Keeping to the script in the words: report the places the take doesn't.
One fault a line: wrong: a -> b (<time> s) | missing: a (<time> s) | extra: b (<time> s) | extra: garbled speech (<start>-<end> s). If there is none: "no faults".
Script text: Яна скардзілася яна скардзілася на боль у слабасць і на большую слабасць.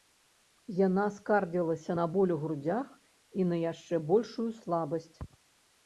missing: яна скардзілася (2.0 s)
wrong: слабасць -> грудзях (2.5 s)
extra: яшчэ (3.7 s)